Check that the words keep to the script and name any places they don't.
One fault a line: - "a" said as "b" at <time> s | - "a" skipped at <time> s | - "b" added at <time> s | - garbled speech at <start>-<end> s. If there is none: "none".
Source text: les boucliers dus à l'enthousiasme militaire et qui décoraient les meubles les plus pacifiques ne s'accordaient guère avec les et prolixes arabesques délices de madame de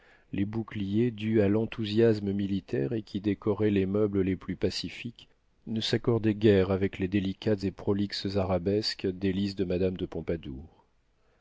- "délicates" added at 7.1 s